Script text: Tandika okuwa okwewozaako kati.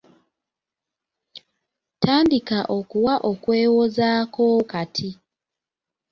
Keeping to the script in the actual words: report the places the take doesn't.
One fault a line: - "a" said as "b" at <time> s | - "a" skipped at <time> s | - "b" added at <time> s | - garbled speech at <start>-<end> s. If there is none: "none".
none